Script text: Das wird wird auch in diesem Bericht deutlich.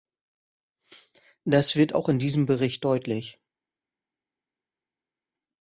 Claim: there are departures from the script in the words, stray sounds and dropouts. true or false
true